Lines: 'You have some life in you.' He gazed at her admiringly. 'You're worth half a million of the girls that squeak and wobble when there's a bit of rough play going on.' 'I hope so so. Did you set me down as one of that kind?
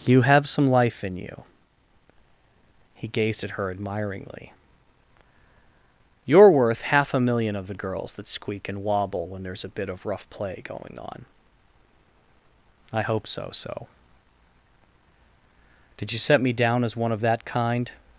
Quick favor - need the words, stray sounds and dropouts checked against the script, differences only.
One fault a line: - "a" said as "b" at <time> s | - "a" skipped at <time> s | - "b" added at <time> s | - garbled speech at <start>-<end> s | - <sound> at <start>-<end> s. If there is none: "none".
none